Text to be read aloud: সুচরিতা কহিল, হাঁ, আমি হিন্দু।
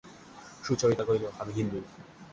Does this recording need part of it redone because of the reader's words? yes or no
yes